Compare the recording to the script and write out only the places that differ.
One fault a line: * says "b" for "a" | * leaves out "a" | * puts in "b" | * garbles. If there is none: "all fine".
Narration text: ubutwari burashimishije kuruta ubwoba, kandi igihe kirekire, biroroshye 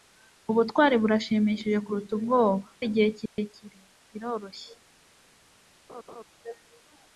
* leaves out "kandi"